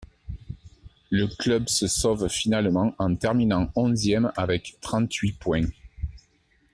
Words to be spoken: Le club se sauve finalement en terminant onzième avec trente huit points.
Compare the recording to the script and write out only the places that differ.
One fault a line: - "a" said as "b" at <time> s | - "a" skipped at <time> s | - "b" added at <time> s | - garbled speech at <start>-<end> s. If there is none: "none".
none